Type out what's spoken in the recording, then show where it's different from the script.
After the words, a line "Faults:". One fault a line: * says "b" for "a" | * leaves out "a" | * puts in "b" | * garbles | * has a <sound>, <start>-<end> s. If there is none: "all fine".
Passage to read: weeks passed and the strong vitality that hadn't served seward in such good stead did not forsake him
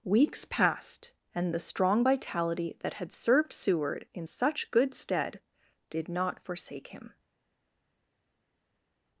weeks passed and the strong vitality that had served seward in such good stead did not forsake him
Faults:
* says "had" for "hadn't"